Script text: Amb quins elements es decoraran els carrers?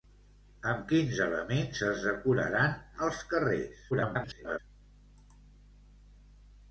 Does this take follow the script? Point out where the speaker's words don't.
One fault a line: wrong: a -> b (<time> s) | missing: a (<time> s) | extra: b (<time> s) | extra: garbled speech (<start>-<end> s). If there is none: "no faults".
extra: garbled speech (3.9-4.6 s)